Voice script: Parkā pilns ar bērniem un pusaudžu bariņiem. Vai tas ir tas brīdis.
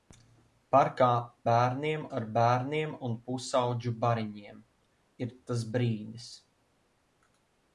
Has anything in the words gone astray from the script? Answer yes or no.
yes